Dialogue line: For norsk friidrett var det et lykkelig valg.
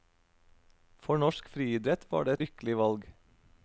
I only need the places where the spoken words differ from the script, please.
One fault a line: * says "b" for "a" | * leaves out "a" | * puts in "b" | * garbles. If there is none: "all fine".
* leaves out "et"